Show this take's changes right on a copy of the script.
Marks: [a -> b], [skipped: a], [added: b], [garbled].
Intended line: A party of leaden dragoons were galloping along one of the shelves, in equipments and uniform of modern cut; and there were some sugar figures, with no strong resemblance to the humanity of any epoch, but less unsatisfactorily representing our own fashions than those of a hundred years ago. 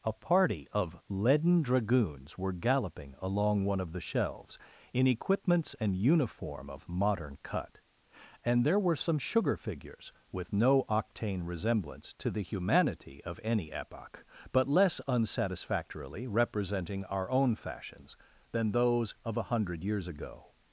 A party of leaden dragoons were galloping along one of the shelves, in equipments and uniform of modern cut; and there were some sugar figures, with no [strong -> octane] resemblance to the humanity of any epoch, but less unsatisfactorily representing our own fashions than those of a hundred years ago.